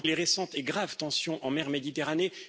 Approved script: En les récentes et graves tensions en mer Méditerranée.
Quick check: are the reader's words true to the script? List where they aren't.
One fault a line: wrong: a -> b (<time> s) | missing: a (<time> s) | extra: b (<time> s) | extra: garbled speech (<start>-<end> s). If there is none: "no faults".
no faults